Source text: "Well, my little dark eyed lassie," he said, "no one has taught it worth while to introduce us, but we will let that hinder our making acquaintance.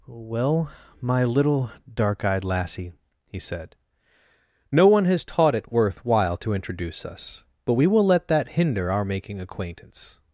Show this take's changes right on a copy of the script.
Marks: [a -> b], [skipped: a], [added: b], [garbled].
"Well, my little dark eyed lassie," he said, "no one has taught it worth while to introduce us, but we will let that hinder our making acquaintance.